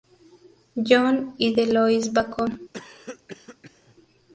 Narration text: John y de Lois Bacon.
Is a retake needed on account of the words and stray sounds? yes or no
yes